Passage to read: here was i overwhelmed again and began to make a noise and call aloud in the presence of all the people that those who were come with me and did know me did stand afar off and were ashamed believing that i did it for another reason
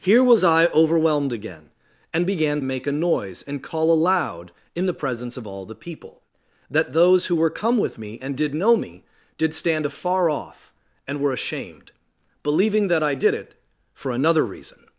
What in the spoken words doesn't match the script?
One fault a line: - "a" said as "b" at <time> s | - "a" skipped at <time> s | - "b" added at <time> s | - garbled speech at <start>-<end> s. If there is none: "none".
- "to" skipped at 2.6 s